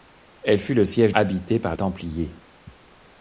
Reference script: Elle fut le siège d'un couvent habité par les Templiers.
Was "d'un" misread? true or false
true